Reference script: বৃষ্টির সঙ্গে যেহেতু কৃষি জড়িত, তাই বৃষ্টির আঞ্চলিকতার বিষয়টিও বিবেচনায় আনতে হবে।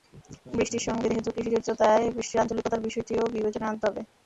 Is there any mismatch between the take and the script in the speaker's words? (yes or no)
no